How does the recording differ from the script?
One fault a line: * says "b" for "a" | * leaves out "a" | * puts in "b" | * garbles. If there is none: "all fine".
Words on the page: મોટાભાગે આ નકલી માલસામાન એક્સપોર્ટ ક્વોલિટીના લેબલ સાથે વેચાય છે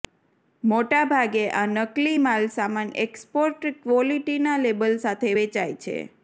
all fine